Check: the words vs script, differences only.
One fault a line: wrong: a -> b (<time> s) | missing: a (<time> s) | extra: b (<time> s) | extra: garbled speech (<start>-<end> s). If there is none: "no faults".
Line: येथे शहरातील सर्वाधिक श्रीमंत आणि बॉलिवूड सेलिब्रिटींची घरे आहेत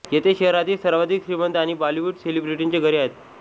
no faults